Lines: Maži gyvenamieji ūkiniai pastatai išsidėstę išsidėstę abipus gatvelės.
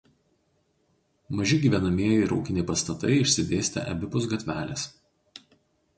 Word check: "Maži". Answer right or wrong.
right